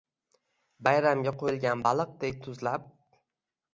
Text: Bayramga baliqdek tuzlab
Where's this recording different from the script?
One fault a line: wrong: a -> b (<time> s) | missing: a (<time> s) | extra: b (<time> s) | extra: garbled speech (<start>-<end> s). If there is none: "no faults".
extra: qo'yilgan (1.4 s)